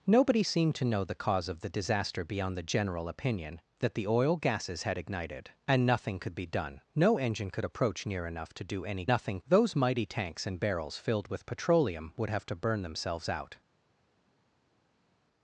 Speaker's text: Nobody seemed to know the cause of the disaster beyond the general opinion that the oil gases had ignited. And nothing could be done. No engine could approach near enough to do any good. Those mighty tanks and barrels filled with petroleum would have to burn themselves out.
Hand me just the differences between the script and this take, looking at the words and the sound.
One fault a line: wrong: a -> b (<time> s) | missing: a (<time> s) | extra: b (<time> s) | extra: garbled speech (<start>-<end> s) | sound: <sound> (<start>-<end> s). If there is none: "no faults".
wrong: good -> nothing (9.1 s)